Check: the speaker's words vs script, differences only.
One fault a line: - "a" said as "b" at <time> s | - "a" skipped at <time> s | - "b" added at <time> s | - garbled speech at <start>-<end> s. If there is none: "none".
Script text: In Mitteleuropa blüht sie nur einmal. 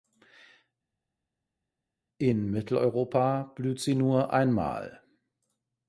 none